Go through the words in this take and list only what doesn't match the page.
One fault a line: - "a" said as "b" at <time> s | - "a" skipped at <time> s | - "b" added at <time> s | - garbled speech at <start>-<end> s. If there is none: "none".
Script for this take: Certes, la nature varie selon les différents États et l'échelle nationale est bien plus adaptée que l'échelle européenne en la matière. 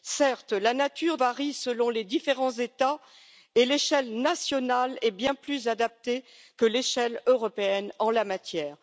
none